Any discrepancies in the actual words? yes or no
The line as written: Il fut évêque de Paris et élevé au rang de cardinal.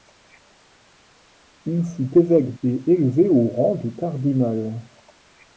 yes